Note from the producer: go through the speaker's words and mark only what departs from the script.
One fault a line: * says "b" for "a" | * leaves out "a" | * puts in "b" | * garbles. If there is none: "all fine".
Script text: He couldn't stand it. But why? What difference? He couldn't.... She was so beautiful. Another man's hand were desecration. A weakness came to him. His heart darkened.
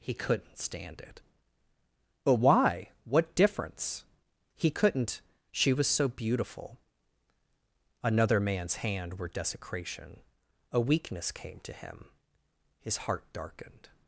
all fine